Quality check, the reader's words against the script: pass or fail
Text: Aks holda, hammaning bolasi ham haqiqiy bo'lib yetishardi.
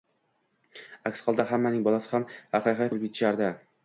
pass